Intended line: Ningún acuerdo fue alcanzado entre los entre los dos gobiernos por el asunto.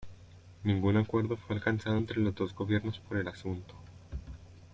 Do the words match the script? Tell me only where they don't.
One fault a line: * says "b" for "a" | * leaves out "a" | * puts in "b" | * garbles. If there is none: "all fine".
* leaves out "entre los"